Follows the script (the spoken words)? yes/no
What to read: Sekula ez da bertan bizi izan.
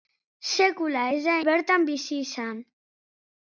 yes